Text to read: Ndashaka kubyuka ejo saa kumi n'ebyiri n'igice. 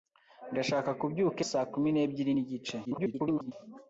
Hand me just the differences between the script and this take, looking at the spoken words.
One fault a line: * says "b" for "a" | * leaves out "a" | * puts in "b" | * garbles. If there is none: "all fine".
* leaves out "ejo"
* garbles